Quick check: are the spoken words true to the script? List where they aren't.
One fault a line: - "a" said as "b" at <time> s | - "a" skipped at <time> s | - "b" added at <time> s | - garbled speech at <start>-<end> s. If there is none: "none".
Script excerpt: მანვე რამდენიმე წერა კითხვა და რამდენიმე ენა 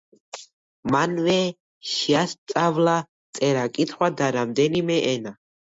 - "რამდენიმე" said as "შეასწავლა" at 1.9 s